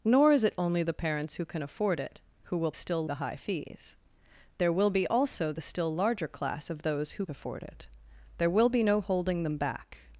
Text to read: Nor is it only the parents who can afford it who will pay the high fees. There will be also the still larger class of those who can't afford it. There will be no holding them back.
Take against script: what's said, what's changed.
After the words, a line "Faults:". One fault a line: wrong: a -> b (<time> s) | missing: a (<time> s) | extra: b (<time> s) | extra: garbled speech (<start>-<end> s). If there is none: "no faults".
Nor is it only the parents who can afford it who will still the high fees. There will be also the still larger class of those who afford it. There will be no holding them back.
Faults:
wrong: pay -> still (2.7 s)
missing: can't (7.3 s)